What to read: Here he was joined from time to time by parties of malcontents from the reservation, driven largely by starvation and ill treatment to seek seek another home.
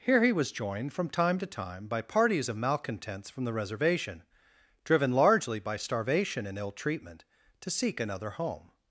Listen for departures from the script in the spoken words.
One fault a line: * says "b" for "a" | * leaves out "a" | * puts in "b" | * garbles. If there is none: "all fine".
* leaves out "seek"